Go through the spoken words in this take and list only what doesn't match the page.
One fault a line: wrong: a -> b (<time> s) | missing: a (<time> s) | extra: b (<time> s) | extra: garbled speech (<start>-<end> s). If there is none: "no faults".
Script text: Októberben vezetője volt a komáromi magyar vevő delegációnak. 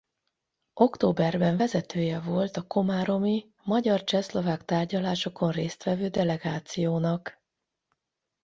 extra: csehszlovák tárgyalásokon részt (4.0 s)